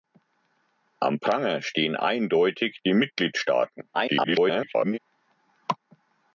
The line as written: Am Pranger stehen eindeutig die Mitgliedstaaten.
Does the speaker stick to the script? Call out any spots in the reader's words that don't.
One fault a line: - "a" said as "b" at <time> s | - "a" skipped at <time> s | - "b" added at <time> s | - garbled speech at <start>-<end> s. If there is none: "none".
- garbled speech at 3.9-5.0 s